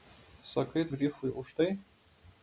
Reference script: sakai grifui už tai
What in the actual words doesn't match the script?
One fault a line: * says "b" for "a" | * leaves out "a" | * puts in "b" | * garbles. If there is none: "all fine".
all fine